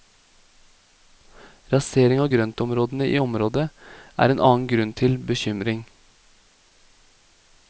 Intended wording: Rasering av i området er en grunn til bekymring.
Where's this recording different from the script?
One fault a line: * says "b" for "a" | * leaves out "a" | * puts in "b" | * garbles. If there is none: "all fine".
* puts in "grøntområdene"
* puts in "annen"